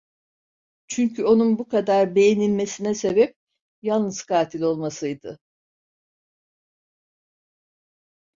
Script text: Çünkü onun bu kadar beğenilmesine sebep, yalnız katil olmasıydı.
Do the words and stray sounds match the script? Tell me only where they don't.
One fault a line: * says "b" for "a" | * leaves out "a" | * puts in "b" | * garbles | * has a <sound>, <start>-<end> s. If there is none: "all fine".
all fine